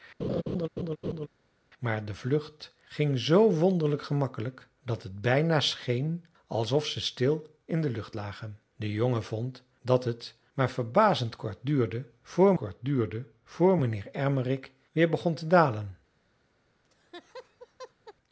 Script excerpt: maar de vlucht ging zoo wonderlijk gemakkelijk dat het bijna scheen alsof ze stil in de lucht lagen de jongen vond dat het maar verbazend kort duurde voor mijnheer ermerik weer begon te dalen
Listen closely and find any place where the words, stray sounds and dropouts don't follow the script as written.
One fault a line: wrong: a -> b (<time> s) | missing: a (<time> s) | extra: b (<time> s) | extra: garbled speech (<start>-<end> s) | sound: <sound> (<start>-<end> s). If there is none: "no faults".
sound: laugh (0.2-1.3 s)
extra: kort duurde voor (12.5 s)
sound: laugh (16.8-18.1 s)